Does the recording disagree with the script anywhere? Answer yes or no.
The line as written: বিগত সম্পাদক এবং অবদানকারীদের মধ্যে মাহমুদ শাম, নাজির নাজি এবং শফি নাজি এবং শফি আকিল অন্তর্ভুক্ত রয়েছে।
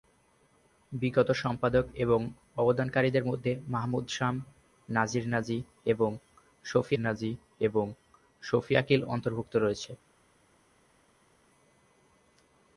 no